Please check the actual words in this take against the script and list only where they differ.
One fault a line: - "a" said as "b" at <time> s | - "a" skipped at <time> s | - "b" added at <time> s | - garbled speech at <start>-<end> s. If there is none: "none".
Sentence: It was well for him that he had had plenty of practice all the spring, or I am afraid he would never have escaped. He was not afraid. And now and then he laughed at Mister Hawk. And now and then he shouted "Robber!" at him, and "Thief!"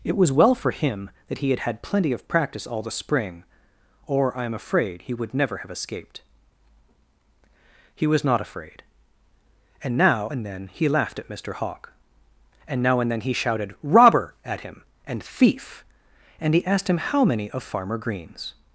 - "And he asked him how many of Farmer Green's" added at 16.4 s